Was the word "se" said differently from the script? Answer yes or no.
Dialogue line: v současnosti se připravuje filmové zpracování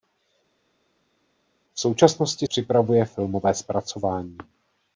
yes